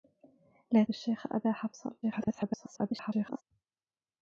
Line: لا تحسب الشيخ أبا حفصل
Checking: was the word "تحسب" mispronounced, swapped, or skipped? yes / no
yes